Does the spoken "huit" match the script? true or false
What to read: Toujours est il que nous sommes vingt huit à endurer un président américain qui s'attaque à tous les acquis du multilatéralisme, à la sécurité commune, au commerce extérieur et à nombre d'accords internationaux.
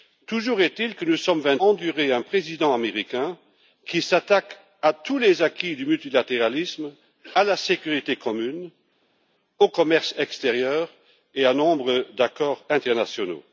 false